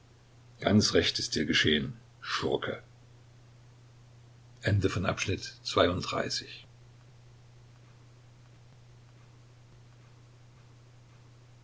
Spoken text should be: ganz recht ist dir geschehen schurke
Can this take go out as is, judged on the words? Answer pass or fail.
pass